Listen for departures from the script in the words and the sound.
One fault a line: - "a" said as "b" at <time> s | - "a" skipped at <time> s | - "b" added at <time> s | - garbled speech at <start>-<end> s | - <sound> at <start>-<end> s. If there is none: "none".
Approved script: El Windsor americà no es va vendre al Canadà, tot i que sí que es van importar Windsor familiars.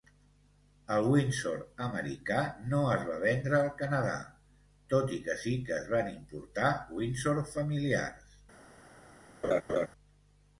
- laugh at 9.4-9.9 s